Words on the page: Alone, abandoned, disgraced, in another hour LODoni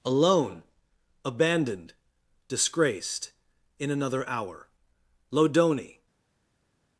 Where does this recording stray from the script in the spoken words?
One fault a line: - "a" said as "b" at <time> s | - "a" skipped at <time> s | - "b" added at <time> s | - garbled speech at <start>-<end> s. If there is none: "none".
none